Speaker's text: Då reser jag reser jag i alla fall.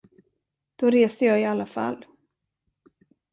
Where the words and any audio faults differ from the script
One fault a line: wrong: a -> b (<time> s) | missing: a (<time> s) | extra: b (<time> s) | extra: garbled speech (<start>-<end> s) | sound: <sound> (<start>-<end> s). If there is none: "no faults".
missing: reser jag (1.4 s)